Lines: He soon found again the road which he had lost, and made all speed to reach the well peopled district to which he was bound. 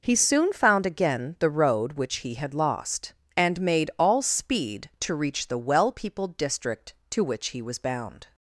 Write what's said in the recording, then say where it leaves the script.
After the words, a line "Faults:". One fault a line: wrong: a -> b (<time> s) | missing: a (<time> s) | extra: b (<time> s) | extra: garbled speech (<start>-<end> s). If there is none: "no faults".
He soon found again the road which he had lost, and made all speed to reach the well peopled district to which he was bound.
Faults:
no faults